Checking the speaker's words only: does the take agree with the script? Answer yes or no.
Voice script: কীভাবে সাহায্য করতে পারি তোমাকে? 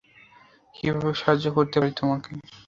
yes